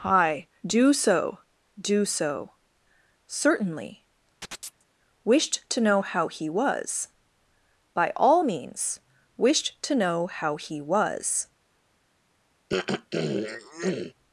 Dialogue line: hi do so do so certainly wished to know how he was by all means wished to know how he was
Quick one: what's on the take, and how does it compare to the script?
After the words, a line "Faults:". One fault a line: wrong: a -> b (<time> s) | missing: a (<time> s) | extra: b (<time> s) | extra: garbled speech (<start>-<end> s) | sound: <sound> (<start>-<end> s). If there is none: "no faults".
hi do so do so certainly wished to know how he was by all means wished to know how he was
Faults:
sound: chirp (4.4-4.8 s)
sound: throat clearing (12.7-14.1 s)